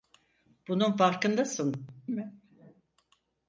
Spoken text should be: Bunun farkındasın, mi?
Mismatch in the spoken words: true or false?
false